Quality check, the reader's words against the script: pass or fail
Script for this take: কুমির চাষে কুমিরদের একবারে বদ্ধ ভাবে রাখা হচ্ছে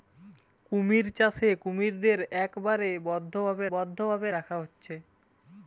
fail